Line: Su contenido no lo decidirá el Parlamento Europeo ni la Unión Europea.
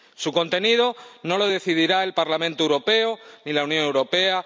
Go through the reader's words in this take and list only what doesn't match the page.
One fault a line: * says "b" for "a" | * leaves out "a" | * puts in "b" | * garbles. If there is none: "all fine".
all fine